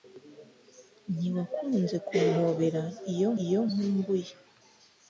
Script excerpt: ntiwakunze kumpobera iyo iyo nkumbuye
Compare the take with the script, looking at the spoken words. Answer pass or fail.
pass